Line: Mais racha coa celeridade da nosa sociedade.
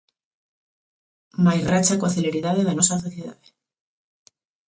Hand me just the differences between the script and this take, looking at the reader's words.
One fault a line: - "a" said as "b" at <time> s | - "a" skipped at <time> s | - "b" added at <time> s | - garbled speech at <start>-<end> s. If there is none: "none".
none